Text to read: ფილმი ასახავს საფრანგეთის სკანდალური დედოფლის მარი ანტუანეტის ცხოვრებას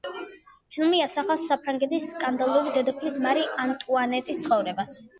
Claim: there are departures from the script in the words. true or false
false